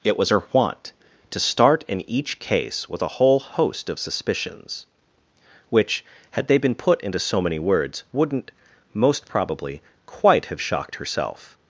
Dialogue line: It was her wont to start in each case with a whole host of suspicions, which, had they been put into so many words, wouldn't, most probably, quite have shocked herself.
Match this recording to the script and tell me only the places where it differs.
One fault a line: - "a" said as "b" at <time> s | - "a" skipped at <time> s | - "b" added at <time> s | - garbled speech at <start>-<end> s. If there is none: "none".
none